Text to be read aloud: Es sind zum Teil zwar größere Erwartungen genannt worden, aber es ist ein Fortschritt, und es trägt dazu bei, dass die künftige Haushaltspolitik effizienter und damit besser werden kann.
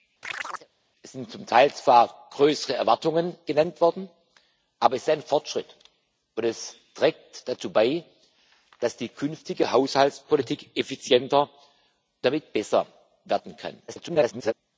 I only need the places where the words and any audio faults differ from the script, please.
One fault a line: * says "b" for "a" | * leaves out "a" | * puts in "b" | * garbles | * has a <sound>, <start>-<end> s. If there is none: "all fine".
* has a chirp, 0.2-0.7 s
* leaves out "und"
* garbles